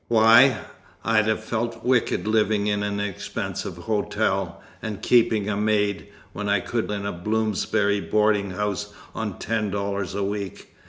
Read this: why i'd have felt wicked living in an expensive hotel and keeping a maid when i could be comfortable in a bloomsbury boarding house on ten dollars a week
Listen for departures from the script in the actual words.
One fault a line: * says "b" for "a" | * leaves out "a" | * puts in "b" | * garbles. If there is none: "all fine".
* leaves out "be comfortable"